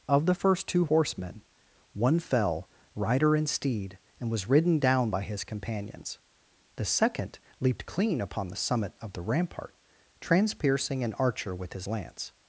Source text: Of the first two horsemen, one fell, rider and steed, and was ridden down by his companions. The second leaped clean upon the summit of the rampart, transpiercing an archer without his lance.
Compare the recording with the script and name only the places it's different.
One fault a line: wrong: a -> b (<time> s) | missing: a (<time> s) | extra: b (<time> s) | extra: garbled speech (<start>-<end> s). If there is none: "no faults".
wrong: without -> with (11.5 s)